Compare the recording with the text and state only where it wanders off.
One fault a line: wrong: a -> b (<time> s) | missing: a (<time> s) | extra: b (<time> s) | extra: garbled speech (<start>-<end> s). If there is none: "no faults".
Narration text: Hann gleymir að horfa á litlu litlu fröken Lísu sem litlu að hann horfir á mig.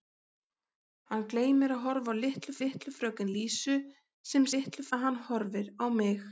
no faults